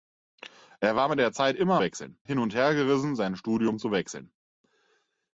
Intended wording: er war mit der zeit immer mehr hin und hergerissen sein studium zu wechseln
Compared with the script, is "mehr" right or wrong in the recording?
wrong